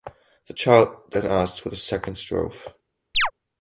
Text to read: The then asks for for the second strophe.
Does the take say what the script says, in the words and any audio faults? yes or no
no